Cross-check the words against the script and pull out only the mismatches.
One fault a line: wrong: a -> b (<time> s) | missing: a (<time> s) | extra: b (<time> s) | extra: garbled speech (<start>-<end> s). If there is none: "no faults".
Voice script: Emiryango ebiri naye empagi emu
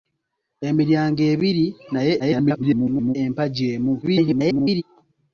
extra: garbled speech (2.2-3.2 s)
extra: garbled speech (4.0-4.8 s)